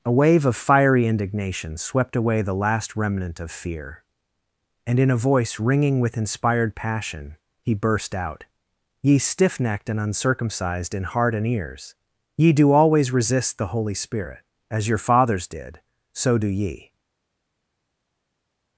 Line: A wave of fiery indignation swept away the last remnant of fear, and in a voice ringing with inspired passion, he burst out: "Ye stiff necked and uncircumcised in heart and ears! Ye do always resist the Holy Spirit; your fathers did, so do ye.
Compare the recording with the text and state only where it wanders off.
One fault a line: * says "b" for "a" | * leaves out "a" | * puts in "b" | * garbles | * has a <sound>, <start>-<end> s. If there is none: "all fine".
* puts in "as"